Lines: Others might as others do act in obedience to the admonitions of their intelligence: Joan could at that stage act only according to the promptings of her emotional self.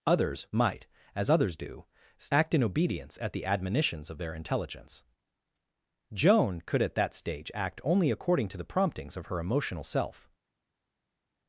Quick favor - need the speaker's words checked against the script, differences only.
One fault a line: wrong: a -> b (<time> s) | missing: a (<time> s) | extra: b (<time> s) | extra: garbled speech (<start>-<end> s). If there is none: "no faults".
wrong: to -> at (3.2 s)